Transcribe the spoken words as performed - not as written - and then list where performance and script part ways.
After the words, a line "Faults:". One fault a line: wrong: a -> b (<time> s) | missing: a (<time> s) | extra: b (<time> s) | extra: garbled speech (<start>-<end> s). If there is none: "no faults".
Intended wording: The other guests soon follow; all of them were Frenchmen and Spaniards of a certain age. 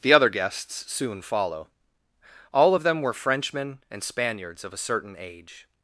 The other guests soon follow; all of them were Frenchmen and Spaniards of a certain age.
Faults:
no faults